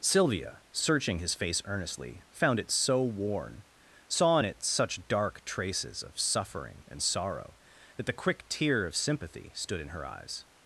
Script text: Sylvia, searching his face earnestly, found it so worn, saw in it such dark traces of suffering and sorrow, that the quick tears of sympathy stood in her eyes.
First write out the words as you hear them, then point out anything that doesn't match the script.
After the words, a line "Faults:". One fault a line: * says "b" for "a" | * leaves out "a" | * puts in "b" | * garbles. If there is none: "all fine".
Sylvia, searching his face earnestly, found it so worn, saw in it such dark traces of suffering and sorrow, that the quick tear of sympathy stood in her eyes.
Faults:
* says "tear" for "tears"